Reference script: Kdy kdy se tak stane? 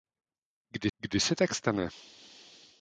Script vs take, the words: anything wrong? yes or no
no